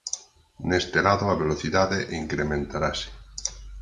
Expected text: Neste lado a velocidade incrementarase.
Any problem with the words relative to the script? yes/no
no